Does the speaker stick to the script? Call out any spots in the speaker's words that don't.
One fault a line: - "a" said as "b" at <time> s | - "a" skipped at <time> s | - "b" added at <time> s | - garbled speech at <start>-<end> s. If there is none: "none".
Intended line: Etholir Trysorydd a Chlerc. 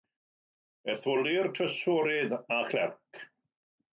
none